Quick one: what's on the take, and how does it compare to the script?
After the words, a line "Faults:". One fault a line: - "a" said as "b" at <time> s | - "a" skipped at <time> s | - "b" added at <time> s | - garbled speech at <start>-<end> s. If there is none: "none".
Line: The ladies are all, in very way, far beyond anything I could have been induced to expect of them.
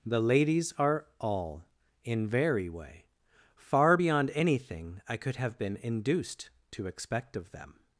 The ladies are all, in very way, far beyond anything I could have been induced to expect of them.
Faults:
none